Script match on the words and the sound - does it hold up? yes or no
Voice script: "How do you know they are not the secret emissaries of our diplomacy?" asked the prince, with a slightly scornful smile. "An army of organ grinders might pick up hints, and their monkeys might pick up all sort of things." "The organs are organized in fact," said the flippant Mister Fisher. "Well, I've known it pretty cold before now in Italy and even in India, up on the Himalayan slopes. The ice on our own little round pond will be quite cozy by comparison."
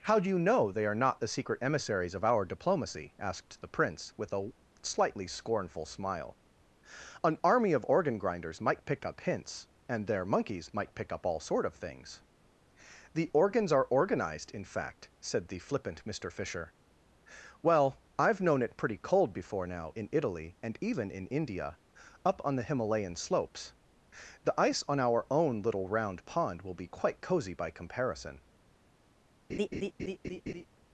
no